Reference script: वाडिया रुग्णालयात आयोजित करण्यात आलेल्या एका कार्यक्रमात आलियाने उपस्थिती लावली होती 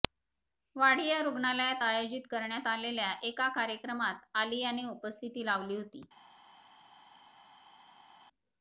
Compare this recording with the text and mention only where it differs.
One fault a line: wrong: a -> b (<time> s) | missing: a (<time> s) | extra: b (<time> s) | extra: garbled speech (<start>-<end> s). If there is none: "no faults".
no faults